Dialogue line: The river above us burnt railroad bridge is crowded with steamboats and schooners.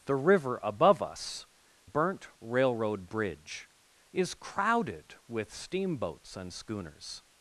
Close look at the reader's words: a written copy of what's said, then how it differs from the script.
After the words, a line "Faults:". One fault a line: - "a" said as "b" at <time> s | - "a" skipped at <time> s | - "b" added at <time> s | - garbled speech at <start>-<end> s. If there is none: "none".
The river above us burnt railroad bridge is crowded with steamboats and schooners.
Faults:
none